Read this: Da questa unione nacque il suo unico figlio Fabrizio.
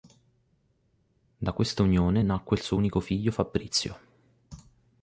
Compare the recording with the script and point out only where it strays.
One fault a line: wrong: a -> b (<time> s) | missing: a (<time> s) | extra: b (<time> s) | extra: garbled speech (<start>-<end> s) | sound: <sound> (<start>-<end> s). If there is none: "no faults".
no faults